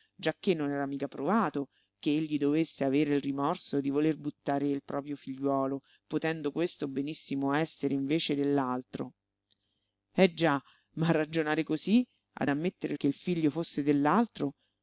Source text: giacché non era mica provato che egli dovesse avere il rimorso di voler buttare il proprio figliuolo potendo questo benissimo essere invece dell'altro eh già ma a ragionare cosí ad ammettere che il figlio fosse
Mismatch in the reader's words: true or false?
false